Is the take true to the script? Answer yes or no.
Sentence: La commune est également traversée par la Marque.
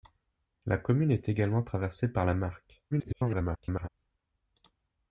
no